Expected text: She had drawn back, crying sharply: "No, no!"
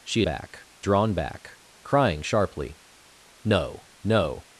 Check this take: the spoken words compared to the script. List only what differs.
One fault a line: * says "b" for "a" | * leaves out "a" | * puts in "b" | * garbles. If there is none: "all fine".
* says "back" for "had"